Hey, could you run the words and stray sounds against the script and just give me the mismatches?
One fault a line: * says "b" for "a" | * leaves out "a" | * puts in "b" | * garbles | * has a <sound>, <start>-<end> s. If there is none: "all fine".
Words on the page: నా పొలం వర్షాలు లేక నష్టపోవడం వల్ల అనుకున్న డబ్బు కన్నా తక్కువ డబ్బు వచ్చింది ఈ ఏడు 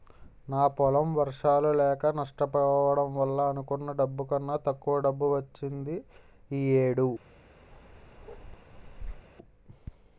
* has a bark, 7.7-9.3 s